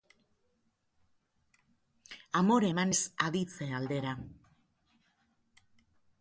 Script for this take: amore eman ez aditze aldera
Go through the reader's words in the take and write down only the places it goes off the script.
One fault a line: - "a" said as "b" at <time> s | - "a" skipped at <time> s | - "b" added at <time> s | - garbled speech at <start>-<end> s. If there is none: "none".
none